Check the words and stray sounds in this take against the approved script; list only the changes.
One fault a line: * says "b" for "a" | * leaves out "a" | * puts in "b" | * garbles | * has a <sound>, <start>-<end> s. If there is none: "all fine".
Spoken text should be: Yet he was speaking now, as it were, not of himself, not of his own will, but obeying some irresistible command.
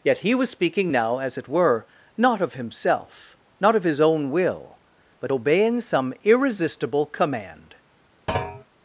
* has a thud, 8.3-8.7 s